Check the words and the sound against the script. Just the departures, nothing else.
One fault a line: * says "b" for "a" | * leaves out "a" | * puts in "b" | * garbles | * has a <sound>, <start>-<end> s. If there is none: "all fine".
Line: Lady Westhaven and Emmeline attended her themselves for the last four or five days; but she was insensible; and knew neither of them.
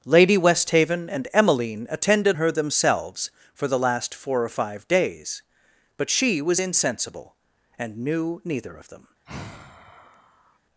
* has a sigh, 9.3-10.6 s